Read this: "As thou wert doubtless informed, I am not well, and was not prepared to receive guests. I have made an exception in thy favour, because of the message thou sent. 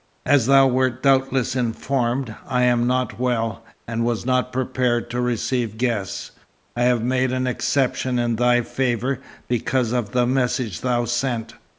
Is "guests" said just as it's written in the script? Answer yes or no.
yes